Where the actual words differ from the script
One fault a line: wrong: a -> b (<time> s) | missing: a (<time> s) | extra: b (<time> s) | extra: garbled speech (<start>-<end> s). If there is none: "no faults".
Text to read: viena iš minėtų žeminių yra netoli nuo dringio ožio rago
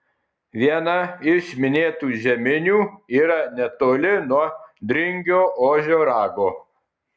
no faults